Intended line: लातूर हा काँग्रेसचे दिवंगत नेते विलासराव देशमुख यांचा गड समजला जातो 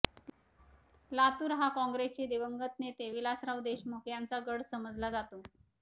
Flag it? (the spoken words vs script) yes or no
no